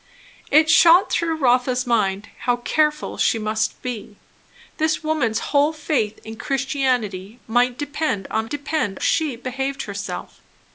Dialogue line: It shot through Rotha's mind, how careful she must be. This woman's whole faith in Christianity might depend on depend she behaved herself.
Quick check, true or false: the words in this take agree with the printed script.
true